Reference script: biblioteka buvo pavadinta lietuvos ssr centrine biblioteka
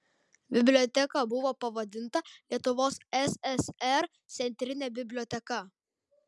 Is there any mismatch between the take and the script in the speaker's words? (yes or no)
no